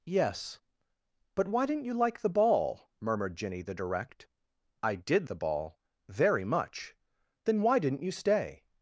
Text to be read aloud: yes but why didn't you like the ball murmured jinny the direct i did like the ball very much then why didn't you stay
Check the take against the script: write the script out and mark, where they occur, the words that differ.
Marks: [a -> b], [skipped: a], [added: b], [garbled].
yes but why didn't you like the ball murmured jinny the direct i did [skipped: like] the ball very much then why didn't you stay